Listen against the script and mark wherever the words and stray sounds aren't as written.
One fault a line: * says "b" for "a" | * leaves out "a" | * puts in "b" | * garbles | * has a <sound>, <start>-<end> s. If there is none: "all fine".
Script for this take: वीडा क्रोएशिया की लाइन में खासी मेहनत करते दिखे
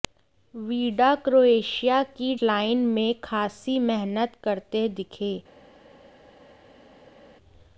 all fine